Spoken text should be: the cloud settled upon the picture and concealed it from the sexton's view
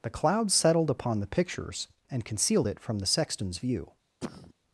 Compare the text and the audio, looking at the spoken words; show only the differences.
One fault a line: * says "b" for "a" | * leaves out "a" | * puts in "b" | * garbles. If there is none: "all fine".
* says "pictures" for "picture"